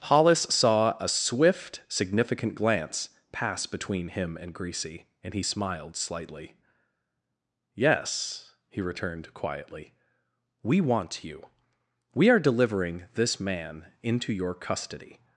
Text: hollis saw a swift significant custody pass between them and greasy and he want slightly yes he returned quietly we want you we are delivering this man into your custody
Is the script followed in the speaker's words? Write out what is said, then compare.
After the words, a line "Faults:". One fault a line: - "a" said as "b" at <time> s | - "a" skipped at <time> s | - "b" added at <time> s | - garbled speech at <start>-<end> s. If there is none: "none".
hollis saw a swift significant glance pass between him and greasy and he smiled slightly yes he returned quietly we want you we are delivering this man into your custody
Faults:
- "custody" said as "glance" at 2.5 s
- "them" said as "him" at 4.1 s
- "want" said as "smiled" at 5.4 s